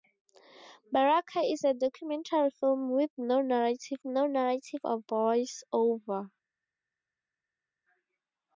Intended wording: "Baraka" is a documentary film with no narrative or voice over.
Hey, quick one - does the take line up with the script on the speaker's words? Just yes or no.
no